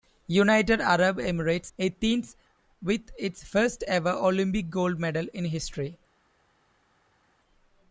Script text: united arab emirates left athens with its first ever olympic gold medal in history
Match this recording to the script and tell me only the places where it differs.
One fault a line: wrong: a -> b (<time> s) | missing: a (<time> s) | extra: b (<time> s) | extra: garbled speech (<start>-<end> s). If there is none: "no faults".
missing: left (1.7 s)